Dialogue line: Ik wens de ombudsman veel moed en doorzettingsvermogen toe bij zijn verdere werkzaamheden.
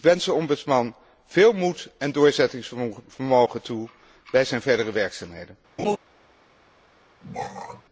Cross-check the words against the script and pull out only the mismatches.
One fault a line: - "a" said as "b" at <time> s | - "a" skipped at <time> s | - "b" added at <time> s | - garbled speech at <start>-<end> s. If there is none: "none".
none